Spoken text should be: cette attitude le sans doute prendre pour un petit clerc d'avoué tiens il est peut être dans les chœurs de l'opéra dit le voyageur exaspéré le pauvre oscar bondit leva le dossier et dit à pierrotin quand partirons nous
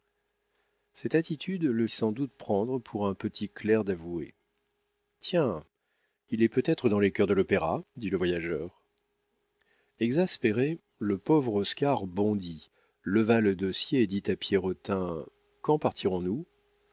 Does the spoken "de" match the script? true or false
true